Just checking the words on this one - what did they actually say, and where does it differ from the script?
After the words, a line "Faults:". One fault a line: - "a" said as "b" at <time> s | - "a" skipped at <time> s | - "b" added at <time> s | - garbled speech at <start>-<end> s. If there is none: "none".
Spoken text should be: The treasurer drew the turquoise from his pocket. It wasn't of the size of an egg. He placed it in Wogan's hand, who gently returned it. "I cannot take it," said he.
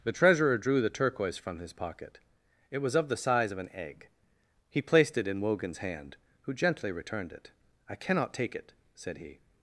The treasurer drew the turquoise from his pocket. It was of the size of an egg. He placed it in Wogan's hand, who gently returned it. "I cannot take it," said he.
Faults:
- "wasn't" said as "was" at 2.8 s